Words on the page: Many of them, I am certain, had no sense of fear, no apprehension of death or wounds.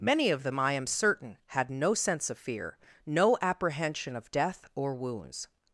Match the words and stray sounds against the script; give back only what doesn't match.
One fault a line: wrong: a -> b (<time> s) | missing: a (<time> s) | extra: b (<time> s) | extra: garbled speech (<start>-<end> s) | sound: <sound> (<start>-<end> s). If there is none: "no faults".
no faults